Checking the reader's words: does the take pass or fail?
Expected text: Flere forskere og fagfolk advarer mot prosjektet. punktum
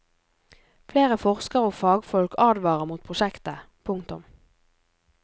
pass